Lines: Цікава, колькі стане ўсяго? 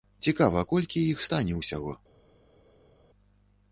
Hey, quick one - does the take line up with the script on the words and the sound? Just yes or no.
no